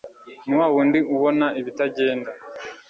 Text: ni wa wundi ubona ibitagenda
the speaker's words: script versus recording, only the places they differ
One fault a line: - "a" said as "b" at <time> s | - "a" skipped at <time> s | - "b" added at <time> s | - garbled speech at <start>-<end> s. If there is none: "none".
none